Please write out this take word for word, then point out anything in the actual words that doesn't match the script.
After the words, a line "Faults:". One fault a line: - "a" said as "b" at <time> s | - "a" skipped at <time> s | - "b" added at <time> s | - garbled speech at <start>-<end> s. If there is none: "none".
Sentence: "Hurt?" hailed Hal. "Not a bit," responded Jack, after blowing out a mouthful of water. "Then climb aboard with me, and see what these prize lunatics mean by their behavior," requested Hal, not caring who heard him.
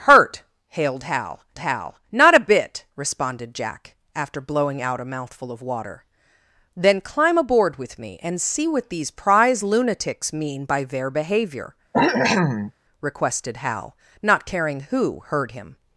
"Hurt?" hailed Hal Hal. "Not a bit," responded Jack, after blowing out a mouthful of water. "Then climb aboard with me, and see what these prize lunatics mean by their behavior," requested Hal, not caring who heard him.
Faults:
- "Hal" added at 1.6 s